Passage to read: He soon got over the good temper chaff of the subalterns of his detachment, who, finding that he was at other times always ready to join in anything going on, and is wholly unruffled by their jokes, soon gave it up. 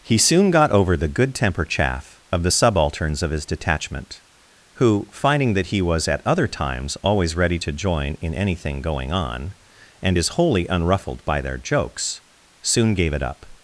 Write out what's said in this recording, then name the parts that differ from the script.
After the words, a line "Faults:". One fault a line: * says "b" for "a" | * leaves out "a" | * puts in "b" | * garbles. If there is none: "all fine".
He soon got over the good temper chaff of the subalterns of his detachment, who, finding that he was at other times always ready to join in anything going on, and is wholly unruffled by their jokes, soon gave it up.
Faults:
all fine